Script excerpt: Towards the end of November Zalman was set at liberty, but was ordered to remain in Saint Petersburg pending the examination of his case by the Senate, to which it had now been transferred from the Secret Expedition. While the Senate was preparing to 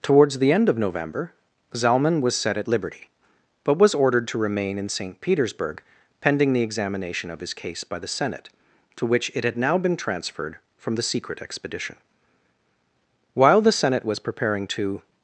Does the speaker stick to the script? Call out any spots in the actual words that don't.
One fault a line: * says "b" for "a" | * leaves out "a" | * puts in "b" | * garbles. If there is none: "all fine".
all fine